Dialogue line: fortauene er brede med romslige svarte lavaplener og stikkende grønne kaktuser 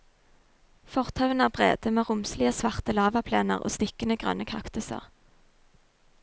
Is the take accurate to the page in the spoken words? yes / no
yes